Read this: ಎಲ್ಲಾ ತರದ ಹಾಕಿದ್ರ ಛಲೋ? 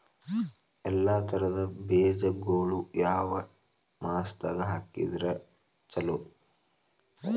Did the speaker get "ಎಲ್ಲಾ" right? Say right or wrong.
right